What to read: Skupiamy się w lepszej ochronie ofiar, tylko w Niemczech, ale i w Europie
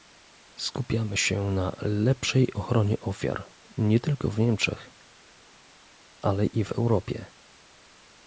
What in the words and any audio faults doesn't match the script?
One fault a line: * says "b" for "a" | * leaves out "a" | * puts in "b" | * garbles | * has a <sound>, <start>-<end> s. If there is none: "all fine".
* says "na" for "w"
* puts in "nie"